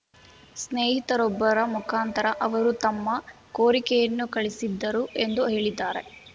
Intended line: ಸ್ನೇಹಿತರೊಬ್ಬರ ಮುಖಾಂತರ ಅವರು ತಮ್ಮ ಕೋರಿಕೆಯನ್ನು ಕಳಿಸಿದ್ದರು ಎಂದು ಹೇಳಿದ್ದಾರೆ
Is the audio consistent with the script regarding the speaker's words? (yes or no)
yes